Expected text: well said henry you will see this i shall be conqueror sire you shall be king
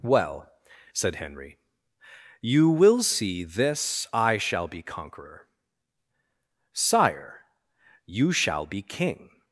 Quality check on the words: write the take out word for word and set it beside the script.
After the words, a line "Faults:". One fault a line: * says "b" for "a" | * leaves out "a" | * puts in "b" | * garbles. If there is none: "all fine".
well said henry you will see this i shall be conqueror sire you shall be king
Faults:
all fine